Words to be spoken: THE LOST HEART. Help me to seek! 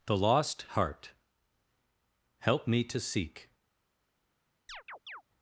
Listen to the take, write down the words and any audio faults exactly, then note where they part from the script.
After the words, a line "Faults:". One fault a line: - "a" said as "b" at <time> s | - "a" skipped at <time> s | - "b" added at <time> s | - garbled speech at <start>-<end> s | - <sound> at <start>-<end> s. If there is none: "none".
THE LOST HEART. Help me to seek!
Faults:
- chirp at 4.7-5.2 s